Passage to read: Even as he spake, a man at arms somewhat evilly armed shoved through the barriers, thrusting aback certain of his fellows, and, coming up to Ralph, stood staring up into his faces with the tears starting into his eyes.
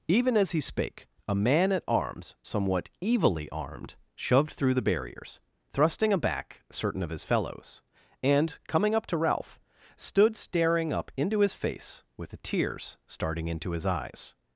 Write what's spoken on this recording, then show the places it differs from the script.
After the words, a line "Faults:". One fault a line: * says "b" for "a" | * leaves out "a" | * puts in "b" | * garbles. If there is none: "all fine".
Even as he spake, a man at arms somewhat evilly armed shoved through the barriers, thrusting aback certain of his fellows, and, coming up to Ralph, stood staring up into his face with the tears starting into his eyes.
Faults:
* says "face" for "faces"